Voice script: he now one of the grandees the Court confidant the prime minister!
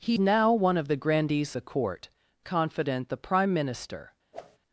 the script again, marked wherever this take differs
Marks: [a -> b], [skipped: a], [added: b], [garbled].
he now one of the grandees the Court confidant the prime minister!